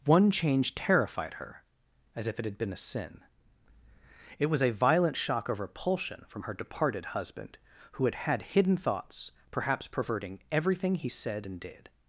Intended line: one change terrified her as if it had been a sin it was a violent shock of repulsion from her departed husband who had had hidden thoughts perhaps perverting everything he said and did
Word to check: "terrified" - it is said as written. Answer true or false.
true